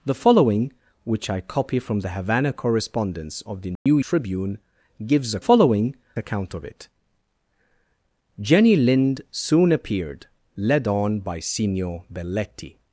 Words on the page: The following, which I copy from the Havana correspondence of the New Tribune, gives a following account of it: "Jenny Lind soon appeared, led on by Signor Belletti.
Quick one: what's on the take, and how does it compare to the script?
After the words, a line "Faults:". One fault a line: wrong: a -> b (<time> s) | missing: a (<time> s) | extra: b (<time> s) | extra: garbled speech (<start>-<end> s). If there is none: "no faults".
The following, which I copy from the Havana correspondence of the New Tribune, gives a following account of it: "Jenny Lind soon appeared, led on by Signor Belletti.
Faults:
no faults